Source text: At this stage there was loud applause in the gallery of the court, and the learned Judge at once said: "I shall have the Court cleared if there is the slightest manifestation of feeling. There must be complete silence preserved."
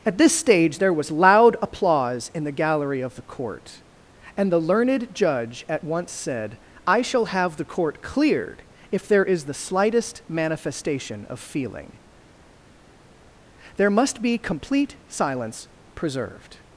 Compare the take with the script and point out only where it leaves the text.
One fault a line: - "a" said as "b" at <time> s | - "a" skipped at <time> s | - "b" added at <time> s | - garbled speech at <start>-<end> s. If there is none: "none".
none